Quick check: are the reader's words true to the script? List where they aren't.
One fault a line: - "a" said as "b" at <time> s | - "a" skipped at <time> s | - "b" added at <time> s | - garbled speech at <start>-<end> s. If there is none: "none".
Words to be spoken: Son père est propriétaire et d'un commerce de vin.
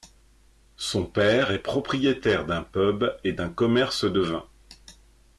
- "d'un pub" added at 2.5 s